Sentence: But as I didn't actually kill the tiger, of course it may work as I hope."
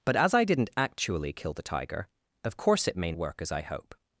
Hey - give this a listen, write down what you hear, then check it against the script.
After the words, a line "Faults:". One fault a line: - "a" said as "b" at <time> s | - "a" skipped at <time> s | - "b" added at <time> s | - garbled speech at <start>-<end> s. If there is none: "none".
But as I didn't actually kill the tiger, of course it may work as I hope."
Faults:
none